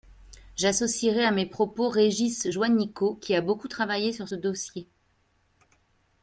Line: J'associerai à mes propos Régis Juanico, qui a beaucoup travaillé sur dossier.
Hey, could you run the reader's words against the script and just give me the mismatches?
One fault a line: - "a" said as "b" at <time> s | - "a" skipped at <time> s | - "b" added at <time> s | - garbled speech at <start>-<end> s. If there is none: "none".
none